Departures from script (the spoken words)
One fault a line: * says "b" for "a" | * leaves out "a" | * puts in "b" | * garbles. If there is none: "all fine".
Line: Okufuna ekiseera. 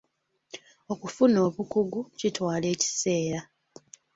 * puts in "obukugu kitwala"